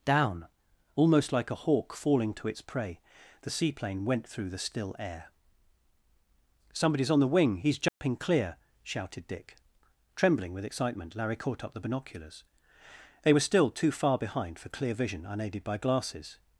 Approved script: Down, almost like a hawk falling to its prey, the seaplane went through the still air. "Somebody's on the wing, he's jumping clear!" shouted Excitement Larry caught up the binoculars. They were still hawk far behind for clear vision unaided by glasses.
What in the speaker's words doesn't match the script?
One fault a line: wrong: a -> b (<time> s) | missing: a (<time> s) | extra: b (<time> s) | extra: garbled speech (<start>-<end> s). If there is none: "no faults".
extra: Dick Trembling with (9.3 s)
wrong: hawk -> too (13.7 s)